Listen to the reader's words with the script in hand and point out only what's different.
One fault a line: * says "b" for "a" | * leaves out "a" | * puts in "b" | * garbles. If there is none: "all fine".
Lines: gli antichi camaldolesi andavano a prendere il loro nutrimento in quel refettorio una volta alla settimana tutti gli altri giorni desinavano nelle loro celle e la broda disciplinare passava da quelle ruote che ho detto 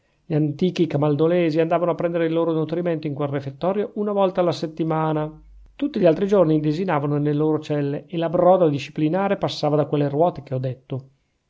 all fine